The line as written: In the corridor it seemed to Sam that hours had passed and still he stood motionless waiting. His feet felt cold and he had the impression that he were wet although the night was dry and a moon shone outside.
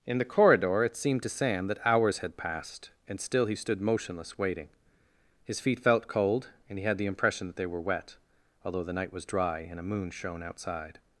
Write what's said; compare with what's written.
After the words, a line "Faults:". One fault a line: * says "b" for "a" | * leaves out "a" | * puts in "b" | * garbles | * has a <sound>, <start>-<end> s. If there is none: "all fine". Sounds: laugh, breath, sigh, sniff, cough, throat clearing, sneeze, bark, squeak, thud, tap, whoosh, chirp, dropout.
In the corridor it seemed to Sam that hours had passed and still he stood motionless waiting. His feet felt cold and he had the impression that they were wet although the night was dry and a moon shone outside.
Faults:
* says "they" for "he"